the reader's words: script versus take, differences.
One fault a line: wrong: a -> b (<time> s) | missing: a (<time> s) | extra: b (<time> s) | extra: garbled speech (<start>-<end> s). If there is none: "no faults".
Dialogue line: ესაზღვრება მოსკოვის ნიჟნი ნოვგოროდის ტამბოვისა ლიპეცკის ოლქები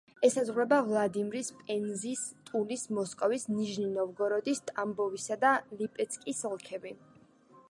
extra: ვლადიმირის პენზის ტულის (0.8 s)
extra: და (5.5 s)